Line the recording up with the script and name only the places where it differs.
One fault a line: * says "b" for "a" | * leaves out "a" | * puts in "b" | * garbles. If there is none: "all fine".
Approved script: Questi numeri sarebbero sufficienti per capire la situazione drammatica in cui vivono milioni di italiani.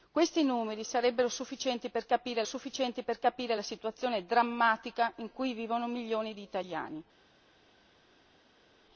* puts in "sufficienti per capire"